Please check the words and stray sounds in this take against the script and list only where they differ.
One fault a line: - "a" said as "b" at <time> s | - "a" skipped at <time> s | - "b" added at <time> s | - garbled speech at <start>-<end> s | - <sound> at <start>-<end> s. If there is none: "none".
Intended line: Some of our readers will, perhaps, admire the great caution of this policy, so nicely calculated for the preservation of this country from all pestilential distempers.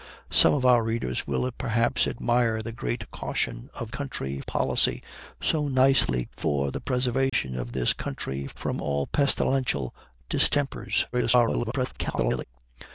- "this" said as "country" at 3.9 s
- "calculated" skipped at 6.2 s
- dropout at 7.3-7.3 s
- garbled speech at 11.1-12.4 s